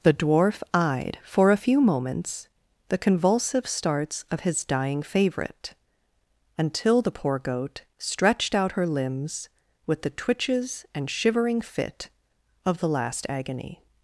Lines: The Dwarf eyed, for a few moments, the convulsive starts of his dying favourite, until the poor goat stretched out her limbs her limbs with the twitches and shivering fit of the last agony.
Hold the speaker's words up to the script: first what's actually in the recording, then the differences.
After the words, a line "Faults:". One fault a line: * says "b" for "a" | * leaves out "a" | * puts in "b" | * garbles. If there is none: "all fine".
The Dwarf eyed, for a few moments, the convulsive starts of his dying favourite, until the poor goat stretched out her limbs with the twitches and shivering fit of the last agony.
Faults:
* leaves out "her limbs"